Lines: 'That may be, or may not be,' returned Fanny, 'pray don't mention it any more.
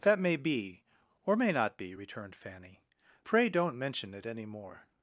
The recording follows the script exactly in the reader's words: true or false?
true